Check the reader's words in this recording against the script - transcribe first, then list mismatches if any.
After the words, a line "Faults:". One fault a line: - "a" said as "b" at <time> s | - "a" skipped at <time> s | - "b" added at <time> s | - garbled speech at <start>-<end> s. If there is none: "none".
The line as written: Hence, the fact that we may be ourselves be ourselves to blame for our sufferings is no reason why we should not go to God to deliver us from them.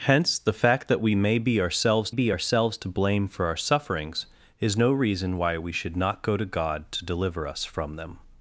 Hence, the fact that we may be ourselves be ourselves to blame for our sufferings is no reason why we should not go to God to deliver us from them.
Faults:
none